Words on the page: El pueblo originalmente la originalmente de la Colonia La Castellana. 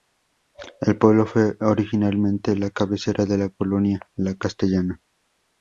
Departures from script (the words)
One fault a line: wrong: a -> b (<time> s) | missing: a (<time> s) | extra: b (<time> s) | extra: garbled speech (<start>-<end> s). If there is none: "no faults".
extra: fue (1.3 s)
wrong: originalmente -> cabecera (2.7 s)